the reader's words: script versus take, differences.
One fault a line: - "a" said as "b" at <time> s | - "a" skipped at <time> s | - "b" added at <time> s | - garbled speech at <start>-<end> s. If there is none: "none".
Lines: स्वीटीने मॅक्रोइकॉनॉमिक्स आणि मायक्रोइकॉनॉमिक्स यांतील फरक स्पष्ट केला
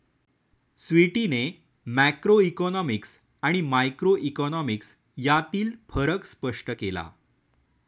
none